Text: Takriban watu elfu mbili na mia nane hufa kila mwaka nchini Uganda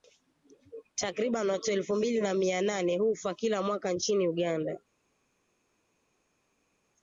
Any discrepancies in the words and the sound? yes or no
no